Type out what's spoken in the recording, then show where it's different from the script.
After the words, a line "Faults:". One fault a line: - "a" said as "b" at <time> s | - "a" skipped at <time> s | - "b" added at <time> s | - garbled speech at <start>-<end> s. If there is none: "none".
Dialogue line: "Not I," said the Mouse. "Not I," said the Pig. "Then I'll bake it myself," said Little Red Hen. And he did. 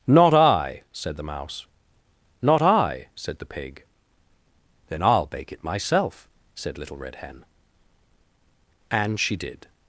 "Not I," said the Mouse. "Not I," said the Pig. "Then I'll bake it myself," said Little Red Hen. And she did.
Faults:
- "he" said as "she" at 9.2 s